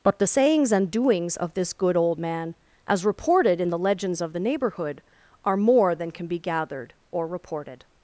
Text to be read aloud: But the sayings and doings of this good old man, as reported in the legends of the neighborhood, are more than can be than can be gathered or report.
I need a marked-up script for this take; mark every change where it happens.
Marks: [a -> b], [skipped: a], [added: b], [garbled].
But the sayings and doings of this good old man, as reported in the legends of the neighborhood, are more than can be [skipped: than can be] gathered or [report. -> reported]